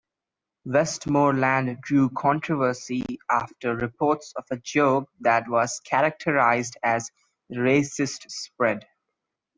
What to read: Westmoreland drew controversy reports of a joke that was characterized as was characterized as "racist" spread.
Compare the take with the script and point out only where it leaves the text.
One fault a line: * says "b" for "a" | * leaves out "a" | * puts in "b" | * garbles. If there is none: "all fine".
* puts in "after"
* leaves out "was characterized as"